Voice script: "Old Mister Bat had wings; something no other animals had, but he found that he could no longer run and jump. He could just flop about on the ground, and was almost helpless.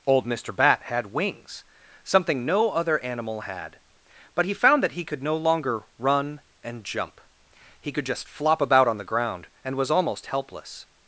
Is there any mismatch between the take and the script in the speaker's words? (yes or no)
yes